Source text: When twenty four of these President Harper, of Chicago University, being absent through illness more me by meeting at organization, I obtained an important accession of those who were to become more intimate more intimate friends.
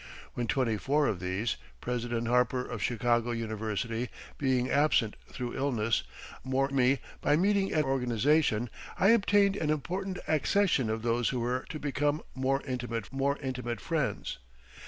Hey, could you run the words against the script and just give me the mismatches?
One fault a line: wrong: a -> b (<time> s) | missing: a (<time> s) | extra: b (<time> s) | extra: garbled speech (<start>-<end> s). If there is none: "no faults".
no faults